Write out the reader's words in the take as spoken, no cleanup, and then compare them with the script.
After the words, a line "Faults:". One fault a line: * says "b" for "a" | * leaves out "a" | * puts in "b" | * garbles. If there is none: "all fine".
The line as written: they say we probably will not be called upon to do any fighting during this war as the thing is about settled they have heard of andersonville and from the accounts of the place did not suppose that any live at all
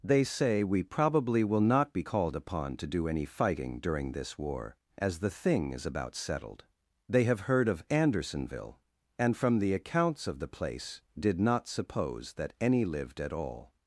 they say we probably will not be called upon to do any fighting during this war as the thing is about settled they have heard of andersonville and from the accounts of the place did not suppose that any lived at all
Faults:
* says "lived" for "live"